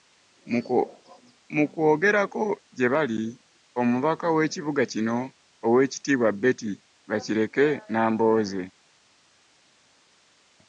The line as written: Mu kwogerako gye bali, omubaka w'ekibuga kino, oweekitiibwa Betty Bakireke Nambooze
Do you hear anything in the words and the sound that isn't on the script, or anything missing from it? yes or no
no